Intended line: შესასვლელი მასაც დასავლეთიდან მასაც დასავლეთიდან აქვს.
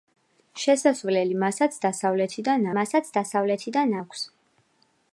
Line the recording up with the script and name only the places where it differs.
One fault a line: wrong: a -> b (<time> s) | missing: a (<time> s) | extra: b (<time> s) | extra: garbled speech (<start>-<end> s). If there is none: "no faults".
no faults